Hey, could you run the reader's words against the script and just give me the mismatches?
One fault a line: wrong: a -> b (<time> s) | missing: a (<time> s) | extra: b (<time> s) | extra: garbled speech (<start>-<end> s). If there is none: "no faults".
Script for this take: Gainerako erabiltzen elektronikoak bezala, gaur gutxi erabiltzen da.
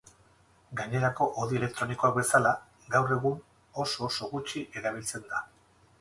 wrong: erabiltzen -> hodi (1.4 s)
extra: egun oso oso (3.1 s)